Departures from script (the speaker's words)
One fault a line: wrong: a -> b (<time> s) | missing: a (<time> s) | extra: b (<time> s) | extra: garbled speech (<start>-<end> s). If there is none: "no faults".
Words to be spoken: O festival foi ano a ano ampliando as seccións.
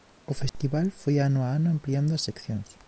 no faults